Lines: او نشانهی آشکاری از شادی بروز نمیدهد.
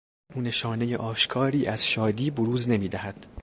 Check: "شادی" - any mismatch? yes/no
no